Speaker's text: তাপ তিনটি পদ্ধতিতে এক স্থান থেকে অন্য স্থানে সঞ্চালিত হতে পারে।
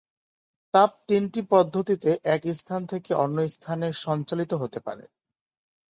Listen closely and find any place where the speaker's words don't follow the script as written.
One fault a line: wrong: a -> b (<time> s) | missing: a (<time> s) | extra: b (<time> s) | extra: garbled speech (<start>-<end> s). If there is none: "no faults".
no faults